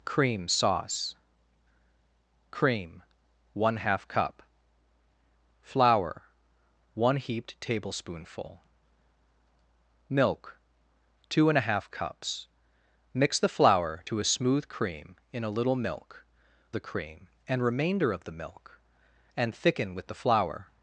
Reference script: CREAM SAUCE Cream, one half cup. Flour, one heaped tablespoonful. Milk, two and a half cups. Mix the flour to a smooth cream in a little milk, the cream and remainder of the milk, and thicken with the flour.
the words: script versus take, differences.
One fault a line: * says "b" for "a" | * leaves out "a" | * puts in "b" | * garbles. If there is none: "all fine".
all fine